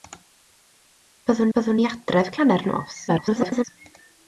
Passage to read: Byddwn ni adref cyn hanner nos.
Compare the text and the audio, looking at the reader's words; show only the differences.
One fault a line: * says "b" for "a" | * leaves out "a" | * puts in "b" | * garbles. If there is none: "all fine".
* puts in "byddwn"
* leaves out "cyn"
* garbles